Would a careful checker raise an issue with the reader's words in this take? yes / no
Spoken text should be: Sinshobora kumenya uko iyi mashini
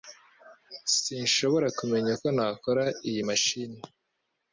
yes